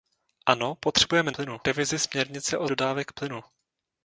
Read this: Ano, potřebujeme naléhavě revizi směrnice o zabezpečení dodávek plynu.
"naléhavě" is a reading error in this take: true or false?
true